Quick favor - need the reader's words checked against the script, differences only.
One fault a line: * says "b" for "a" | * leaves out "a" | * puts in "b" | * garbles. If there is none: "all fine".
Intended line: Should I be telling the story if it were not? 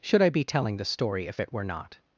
all fine